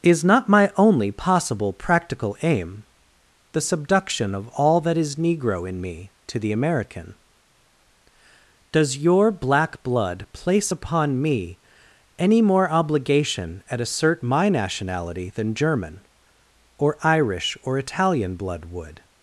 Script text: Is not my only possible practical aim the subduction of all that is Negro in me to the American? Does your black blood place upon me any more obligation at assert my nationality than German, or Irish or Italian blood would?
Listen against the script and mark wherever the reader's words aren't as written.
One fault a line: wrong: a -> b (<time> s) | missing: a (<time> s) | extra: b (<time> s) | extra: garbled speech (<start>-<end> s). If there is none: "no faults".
no faults